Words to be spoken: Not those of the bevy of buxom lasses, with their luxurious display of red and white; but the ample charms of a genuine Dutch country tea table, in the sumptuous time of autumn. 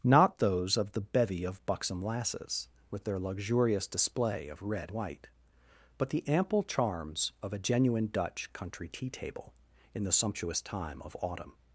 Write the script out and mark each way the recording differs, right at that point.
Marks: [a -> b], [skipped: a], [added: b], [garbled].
Not those of the bevy of buxom lasses, with their luxurious display of red [skipped: and] white; but the ample charms of a genuine Dutch country tea table, in the sumptuous time of autumn.